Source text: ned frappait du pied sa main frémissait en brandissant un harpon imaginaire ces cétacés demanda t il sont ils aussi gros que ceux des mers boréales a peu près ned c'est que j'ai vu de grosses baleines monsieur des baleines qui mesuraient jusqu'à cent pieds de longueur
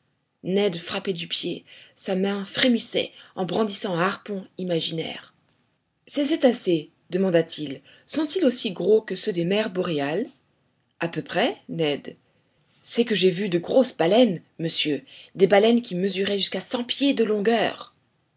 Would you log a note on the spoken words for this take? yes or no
no